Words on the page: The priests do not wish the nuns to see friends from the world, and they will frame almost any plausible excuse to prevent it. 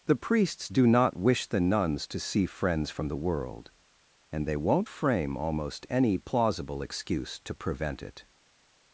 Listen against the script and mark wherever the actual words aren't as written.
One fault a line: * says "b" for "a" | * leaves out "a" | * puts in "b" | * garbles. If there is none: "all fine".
* says "won't" for "will"